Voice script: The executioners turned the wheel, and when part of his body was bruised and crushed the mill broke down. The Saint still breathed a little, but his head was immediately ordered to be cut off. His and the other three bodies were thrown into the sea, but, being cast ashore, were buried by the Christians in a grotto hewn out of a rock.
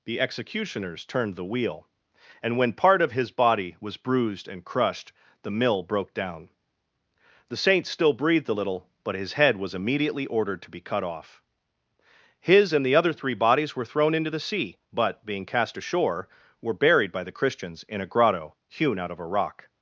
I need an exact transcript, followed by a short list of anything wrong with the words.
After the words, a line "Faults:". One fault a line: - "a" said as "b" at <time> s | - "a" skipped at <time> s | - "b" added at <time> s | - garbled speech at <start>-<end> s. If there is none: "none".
The executioners turned the wheel, and when part of his body was bruised and crushed the mill broke down. The Saint still breathed a little, but his head was immediately ordered to be cut off. His and the other three bodies were thrown into the sea, but, being cast ashore, were buried by the Christians in a grotto hewn out of a rock.
Faults:
none